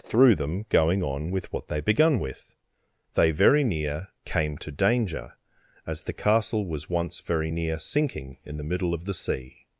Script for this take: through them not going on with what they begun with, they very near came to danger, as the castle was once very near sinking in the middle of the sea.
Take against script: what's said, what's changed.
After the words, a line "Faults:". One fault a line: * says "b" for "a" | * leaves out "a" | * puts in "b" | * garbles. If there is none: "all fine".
through them going on with what they begun with, they very near came to danger, as the castle was once very near sinking in the middle of the sea.
Faults:
* leaves out "not"